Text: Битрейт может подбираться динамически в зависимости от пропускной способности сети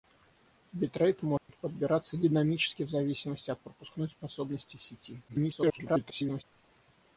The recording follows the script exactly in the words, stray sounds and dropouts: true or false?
false